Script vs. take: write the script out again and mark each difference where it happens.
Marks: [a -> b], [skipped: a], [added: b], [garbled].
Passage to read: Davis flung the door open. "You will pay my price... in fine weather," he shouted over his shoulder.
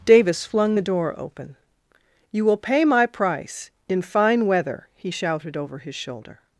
Davis flung the door open. "You will pay my price... in fine weather," he shouted over his shoulder.